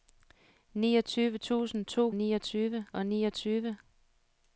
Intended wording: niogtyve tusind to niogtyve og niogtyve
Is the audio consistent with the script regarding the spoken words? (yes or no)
yes